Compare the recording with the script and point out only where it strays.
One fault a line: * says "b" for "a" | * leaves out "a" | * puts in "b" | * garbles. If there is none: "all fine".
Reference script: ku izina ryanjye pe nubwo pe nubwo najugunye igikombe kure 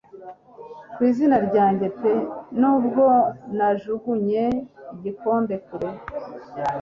* leaves out "pe nubwo"